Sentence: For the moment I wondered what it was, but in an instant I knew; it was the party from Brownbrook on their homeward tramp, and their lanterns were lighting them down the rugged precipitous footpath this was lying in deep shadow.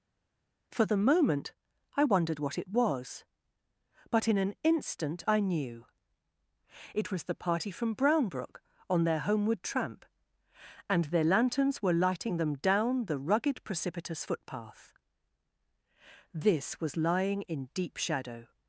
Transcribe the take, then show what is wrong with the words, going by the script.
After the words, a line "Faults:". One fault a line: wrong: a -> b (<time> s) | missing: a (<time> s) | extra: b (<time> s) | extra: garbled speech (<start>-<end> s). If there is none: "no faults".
For the moment I wondered what it was, but in an instant I knew; it was the party from Brownbrook on their homeward tramp, and their lanterns were lighting them down the rugged precipitous footpath this was lying in deep shadow.
Faults:
no faults